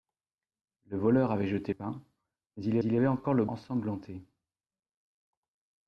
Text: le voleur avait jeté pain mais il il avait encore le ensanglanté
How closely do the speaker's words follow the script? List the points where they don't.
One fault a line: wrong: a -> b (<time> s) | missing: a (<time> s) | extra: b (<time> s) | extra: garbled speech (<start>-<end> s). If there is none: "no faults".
no faults